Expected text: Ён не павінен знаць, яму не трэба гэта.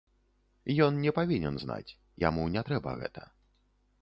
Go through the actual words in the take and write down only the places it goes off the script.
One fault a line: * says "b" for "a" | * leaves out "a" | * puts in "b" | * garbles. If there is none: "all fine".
all fine